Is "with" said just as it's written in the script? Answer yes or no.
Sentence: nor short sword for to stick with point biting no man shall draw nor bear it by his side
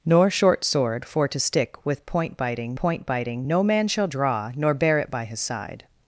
yes